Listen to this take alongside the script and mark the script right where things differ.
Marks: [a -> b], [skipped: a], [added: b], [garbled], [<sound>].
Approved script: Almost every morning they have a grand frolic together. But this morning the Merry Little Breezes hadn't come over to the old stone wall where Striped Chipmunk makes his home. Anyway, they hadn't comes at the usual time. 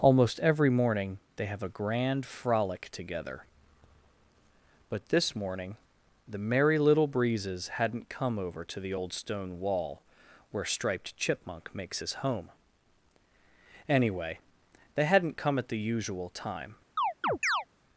Almost every morning they have a grand frolic together. But this morning the Merry Little Breezes hadn't come over to the old stone wall where Striped Chipmunk makes his home. Anyway, they hadn't [comes -> come] at the usual time. [chirp]